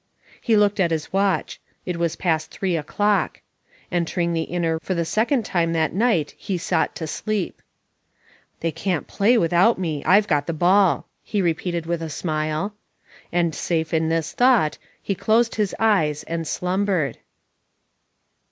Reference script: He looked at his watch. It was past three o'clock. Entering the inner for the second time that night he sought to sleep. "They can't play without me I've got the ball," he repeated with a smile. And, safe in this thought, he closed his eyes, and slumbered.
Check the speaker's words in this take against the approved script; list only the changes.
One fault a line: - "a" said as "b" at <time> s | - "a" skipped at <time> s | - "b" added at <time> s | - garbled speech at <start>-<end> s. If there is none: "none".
none